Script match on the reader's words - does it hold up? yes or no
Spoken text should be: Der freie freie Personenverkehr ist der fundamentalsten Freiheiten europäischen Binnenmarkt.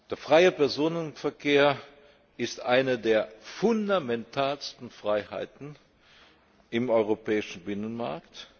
no